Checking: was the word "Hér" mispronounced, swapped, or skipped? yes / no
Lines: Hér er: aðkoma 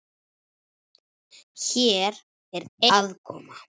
no